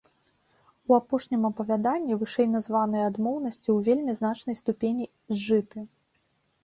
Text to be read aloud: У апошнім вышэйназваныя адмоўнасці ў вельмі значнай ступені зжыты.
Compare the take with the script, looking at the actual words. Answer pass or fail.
fail